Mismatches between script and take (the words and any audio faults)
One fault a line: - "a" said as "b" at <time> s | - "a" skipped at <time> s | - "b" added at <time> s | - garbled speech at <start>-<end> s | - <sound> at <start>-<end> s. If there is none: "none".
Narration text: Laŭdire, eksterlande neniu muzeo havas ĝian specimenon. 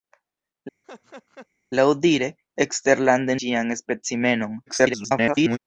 - laugh at 0.8-1.5 s
- "neniu muzeo havas" skipped at 3.4 s
- garbled speech at 4.7-5.6 s